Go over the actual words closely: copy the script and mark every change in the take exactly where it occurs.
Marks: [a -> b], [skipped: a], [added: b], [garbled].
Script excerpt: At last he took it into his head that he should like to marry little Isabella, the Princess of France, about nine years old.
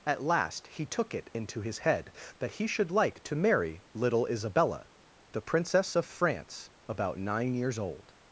At last he took it into his head that he should like to marry little Isabella, the Princess of France, about nine years old.